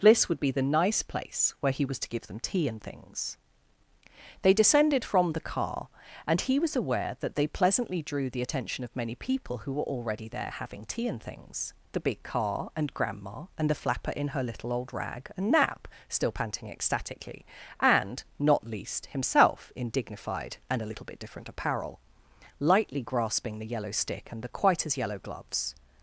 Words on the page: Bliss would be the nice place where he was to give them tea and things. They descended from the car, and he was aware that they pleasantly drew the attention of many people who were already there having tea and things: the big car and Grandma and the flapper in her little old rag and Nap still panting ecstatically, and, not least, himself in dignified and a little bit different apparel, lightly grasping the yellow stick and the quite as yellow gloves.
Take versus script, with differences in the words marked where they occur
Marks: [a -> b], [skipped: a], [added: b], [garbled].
Bliss would be the nice place where he was to give them tea and things. They descended from the car, and he was aware that they pleasantly drew the attention of many people who were already there having tea and things: the big car and Grandma and the flapper in her little old rag and Nap still panting ecstatically, and, not least, himself in dignified and a little bit different apparel, lightly grasping the yellow stick and the quite as yellow gloves.